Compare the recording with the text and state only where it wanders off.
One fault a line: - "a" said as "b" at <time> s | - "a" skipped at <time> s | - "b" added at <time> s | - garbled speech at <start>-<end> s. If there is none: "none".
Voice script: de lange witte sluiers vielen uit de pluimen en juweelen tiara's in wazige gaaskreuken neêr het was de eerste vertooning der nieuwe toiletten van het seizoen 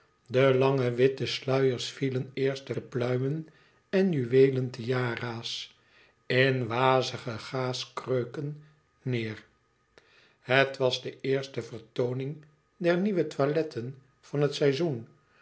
- "uit" said as "eerste" at 2.3 s